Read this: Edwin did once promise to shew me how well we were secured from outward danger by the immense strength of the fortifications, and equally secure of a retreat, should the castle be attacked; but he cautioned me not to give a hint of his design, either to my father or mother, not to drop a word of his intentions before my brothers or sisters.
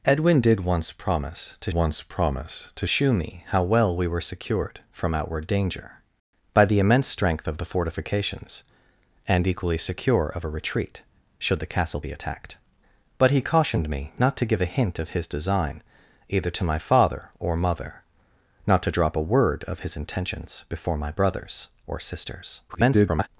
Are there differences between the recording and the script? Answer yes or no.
yes